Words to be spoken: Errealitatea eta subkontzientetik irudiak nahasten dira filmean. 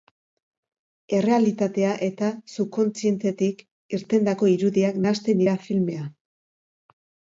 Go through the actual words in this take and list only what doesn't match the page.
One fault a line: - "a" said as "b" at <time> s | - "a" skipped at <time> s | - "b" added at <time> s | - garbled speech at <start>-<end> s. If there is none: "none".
- "irtendako" added at 4.0 s